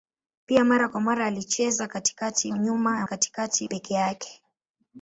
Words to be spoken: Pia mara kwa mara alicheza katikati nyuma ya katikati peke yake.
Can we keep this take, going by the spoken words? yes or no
yes